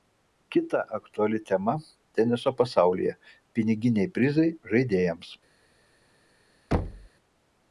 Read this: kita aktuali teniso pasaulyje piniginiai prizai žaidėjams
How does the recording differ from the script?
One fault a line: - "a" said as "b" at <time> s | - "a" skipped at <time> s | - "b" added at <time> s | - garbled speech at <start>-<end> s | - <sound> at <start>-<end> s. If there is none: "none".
- "tema" added at 1.5 s
- thud at 6.7-7.1 s